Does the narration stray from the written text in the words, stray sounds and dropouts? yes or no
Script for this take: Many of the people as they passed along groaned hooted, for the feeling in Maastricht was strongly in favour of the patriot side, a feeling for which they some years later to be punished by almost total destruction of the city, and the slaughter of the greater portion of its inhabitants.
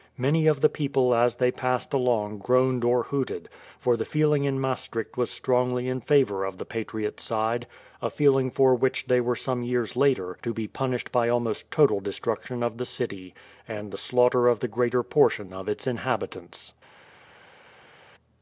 yes